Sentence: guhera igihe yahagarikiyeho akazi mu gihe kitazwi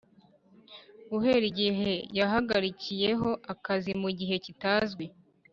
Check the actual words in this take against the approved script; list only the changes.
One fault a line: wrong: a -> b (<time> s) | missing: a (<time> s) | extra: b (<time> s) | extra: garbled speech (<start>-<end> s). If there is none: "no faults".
no faults